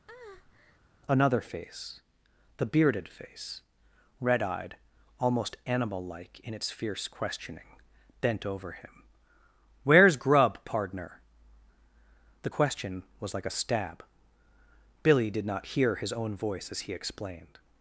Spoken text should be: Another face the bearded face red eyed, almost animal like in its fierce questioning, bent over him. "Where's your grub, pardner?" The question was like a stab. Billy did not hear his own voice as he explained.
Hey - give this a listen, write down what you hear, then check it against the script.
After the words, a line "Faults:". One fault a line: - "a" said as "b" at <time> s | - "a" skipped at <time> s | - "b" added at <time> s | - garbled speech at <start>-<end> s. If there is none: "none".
Another face the bearded face red eyed, almost animal like in its fierce questioning, bent over him. "Where's grub, pardner?" The question was like a stab. Billy did not hear his own voice as he explained.
Faults:
- "your" skipped at 10.2 s